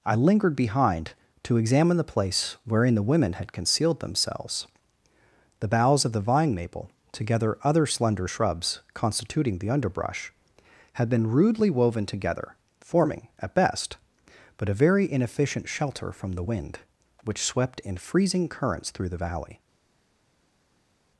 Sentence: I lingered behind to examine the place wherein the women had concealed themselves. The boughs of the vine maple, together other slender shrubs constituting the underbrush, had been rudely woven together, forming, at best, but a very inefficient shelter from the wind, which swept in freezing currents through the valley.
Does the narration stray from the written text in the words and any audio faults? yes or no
no